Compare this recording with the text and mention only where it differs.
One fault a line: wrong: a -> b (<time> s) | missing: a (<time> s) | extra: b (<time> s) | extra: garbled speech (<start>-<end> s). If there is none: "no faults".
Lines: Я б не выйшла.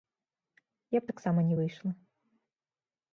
extra: таксама (1.1 s)